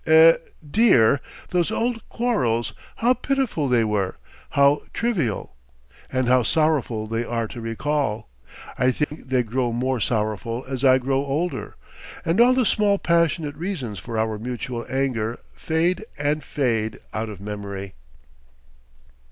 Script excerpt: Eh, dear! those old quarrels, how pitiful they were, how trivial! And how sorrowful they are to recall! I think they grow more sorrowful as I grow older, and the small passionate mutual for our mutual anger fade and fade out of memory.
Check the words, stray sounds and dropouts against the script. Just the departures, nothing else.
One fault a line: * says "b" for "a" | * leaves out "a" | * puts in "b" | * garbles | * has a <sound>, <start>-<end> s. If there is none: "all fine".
* has a dropout, 9.0-9.1 s
* puts in "all"
* says "reasons" for "mutual"